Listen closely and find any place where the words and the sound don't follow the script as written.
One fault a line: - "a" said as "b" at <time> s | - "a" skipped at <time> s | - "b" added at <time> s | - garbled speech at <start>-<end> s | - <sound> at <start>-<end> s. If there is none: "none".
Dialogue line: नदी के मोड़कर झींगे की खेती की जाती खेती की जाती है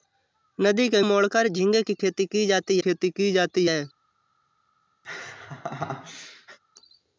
- laugh at 5.0-6.6 s